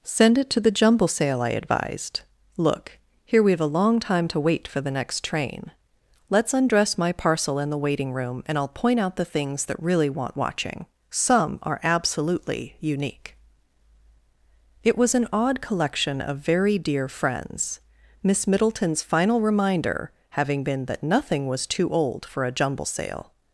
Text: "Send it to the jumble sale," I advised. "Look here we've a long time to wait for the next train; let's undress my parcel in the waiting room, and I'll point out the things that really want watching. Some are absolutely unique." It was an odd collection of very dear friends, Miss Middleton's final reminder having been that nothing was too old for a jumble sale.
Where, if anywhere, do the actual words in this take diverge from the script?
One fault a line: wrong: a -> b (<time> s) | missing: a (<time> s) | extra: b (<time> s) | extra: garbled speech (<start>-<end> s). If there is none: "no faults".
no faults